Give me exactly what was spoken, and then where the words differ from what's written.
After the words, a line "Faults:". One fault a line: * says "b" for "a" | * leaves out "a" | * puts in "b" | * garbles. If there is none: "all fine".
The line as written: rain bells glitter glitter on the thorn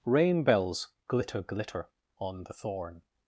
rain bells glitter glitter on the thorn
Faults:
all fine